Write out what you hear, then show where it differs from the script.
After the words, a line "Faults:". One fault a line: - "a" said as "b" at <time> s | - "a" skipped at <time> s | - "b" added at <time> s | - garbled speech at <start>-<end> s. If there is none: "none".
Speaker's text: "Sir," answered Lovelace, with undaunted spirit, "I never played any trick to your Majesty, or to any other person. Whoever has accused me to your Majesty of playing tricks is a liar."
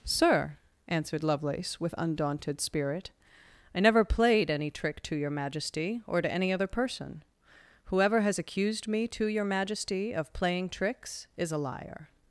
"Sir," answered Lovelace, with undaunted spirit, "I never played any trick to your Majesty, or to any other person. Whoever has accused me to your Majesty of playing tricks is a liar."
Faults:
none